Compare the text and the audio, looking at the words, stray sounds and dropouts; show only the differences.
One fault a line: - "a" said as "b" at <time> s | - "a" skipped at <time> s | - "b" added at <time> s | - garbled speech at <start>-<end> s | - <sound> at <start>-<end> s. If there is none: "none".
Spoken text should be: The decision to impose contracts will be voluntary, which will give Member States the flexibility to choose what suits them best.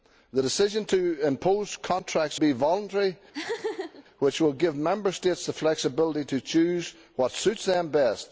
- "will" skipped at 2.4 s
- laugh at 3.3-4.0 s